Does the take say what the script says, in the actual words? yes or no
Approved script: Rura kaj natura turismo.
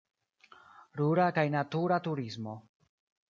yes